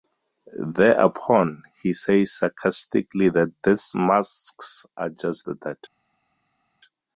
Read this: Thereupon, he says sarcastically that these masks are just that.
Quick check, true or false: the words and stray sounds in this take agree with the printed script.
true